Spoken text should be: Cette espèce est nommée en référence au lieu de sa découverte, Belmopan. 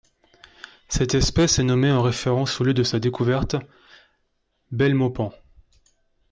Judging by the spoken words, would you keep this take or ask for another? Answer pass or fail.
pass